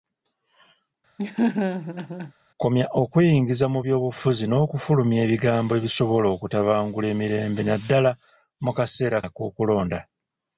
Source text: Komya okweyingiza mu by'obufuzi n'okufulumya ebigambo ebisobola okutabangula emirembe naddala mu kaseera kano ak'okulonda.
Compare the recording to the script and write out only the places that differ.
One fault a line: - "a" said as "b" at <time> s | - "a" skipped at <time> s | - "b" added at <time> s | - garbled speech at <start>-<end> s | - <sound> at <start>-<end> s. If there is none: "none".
- laugh at 1.2-2.3 s
- "kano" skipped at 9.2 s